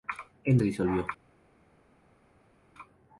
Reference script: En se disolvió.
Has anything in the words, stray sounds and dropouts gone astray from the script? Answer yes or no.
no